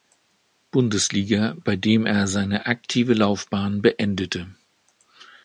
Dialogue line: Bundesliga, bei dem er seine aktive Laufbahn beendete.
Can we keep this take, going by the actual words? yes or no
yes